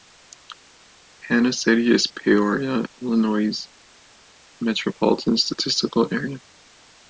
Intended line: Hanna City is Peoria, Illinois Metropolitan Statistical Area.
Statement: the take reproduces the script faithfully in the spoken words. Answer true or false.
true